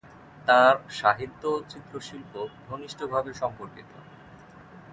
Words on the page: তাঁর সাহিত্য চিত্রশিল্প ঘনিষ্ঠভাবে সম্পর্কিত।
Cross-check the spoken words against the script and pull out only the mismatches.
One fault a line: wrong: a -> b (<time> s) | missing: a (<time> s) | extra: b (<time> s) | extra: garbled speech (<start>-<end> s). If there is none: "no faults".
extra: ও (1.5 s)